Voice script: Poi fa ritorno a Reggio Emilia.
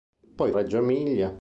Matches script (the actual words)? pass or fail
fail